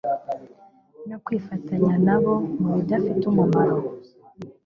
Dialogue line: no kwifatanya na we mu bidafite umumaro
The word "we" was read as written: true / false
false